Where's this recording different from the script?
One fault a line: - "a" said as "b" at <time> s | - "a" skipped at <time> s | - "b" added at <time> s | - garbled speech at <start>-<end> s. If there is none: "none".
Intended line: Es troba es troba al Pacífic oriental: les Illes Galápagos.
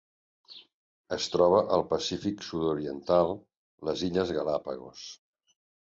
- "es troba" skipped at 1.6 s
- "sud" added at 2.5 s